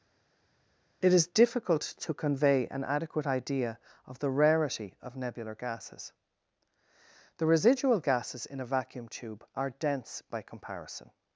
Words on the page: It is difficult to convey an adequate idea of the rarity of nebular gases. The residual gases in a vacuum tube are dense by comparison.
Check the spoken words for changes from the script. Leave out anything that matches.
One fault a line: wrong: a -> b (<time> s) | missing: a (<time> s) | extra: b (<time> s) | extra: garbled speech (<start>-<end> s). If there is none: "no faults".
no faults